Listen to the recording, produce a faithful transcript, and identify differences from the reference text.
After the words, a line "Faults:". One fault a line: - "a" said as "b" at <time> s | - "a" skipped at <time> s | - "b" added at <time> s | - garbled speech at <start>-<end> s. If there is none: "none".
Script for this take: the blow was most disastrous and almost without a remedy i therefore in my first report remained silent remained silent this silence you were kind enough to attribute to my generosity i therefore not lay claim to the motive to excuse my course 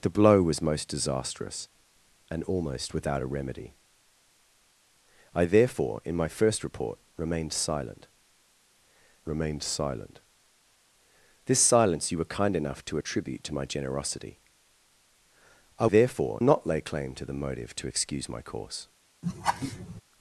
the blow was most disastrous and almost without a remedy i therefore in my first report remained silent remained silent this silence you were kind enough to attribute to my generosity i therefore not lay claim to the motive to excuse my course
Faults:
none